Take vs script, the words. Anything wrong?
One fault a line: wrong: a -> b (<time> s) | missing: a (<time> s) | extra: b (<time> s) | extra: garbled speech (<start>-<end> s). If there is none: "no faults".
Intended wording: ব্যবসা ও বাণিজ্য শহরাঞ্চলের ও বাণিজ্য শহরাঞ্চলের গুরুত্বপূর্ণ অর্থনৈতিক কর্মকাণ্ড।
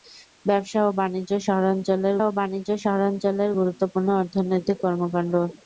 no faults